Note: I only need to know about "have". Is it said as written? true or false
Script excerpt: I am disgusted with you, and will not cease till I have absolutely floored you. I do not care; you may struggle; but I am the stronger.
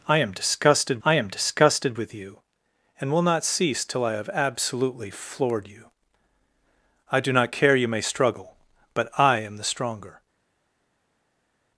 true